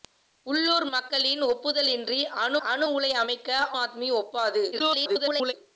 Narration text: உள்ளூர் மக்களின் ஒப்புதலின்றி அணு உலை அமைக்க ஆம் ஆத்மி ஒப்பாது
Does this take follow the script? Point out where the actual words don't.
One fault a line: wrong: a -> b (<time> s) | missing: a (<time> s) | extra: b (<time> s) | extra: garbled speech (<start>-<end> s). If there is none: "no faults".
extra: அணு (2.7 s)
missing: ஆம் (3.5 s)
extra: garbled speech (4.7-5.5 s)